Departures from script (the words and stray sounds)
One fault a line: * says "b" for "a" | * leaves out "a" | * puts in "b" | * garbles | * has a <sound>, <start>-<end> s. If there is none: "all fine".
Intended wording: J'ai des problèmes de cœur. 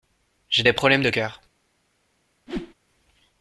* has a whoosh, 2.5-2.7 s